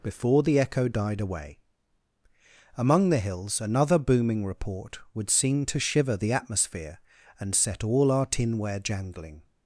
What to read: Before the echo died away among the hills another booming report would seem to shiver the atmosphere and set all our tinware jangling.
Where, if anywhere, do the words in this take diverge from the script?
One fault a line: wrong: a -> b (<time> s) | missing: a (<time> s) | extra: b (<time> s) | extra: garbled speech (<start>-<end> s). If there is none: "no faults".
no faults